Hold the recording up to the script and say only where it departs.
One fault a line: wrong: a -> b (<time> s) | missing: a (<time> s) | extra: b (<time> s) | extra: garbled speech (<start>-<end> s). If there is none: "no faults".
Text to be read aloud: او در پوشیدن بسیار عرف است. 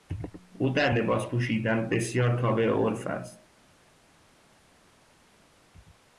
extra: لباس (0.9 s)
extra: تابع (2.4 s)